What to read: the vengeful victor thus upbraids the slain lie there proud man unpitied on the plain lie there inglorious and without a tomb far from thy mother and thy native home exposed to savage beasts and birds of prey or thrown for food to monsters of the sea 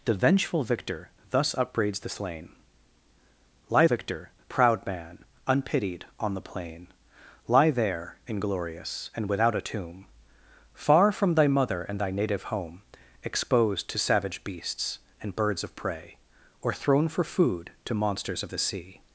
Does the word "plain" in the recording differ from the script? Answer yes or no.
no